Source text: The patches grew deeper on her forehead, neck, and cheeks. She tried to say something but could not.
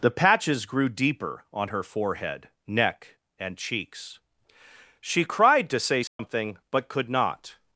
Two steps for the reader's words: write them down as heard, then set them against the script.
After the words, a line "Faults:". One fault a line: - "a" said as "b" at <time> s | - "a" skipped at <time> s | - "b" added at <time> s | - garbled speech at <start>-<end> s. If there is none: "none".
The patches grew deeper on her forehead, neck, and cheeks. She cried to say something but could not.
Faults:
- "tried" said as "cried" at 5.2 s